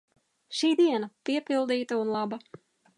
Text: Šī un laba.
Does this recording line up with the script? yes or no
no